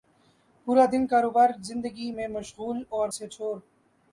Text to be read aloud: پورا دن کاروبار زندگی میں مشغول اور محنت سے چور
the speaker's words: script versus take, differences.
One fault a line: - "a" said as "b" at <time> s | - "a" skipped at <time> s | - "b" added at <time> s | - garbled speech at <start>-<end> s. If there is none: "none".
- "محنت" skipped at 3.1 s